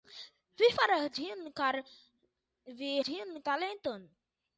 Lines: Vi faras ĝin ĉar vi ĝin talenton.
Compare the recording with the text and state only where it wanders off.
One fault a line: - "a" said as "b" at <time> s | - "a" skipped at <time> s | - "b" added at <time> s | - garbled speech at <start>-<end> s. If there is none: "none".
none